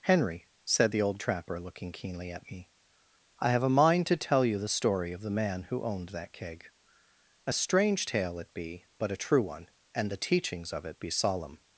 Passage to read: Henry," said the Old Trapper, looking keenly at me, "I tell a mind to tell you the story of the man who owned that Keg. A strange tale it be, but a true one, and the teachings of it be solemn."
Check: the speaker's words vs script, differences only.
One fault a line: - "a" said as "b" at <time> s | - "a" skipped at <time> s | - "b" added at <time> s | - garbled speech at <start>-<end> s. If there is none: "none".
- "tell" said as "have" at 3.5 s